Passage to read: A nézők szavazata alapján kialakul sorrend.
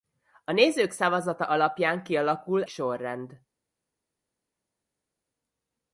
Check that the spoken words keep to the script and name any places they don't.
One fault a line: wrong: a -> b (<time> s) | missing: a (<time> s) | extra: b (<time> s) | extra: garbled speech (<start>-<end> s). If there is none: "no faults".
no faults